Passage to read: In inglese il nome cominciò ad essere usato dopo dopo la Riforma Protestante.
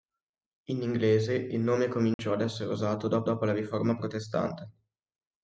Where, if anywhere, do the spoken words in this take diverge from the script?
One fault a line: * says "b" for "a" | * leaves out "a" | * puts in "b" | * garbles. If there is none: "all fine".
all fine